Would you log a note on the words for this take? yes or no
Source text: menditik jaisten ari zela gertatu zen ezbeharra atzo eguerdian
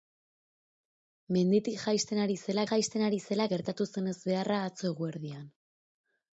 yes